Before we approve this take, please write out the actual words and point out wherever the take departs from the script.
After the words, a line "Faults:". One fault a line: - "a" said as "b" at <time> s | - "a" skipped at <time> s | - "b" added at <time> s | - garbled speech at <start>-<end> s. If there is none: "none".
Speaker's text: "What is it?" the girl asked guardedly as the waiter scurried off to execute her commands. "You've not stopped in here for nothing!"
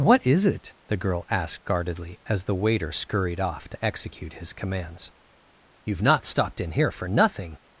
"What is it?" the girl asked guardedly as the waiter scurried off to execute his commands. "You've not stopped in here for nothing!"
Faults:
- "her" said as "his" at 4.3 s